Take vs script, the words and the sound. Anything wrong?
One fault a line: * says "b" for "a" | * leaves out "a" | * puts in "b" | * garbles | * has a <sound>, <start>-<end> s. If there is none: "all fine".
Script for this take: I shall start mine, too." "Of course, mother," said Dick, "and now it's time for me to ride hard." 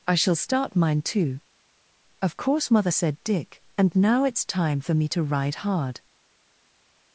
all fine